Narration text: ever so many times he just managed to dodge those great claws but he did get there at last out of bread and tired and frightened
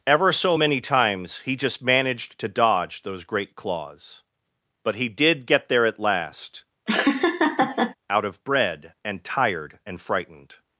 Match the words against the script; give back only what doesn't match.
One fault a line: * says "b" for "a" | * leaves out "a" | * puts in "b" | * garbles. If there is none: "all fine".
all fine